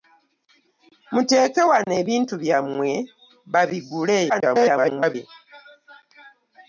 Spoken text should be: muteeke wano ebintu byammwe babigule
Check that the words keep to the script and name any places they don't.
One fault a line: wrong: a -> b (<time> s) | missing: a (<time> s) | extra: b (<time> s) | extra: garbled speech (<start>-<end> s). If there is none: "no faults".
extra: garbled speech (4.3-5.1 s)